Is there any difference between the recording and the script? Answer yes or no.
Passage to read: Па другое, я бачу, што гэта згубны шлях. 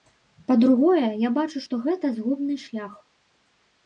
no